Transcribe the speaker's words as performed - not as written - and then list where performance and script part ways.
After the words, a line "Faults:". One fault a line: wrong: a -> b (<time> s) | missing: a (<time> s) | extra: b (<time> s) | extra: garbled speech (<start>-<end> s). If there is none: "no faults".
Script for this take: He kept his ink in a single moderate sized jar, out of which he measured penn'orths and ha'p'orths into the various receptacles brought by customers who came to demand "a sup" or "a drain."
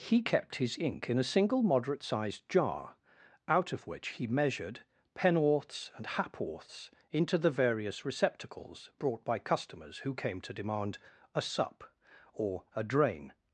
He kept his ink in a single moderate sized jar, out of which he measured penn'orths and ha'p'orths into the various receptacles brought by customers who came to demand "a sup" or "a drain."
Faults:
no faults